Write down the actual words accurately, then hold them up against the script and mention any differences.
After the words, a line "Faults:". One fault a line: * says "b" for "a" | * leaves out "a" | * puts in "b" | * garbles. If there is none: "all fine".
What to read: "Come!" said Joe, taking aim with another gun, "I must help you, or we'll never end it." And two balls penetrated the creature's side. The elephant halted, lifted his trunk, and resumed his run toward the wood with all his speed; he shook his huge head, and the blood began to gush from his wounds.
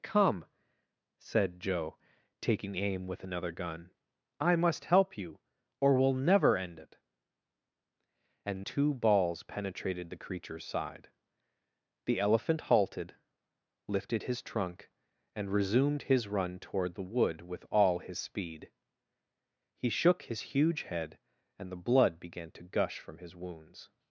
"Come!" said Joe, taking aim with another gun, "I must help you, or we'll never end it." And two balls penetrated the creature's side. The elephant halted, lifted his trunk, and resumed his run toward the wood with all his speed; he shook his huge head, and the blood began to gush from his wounds.
Faults:
all fine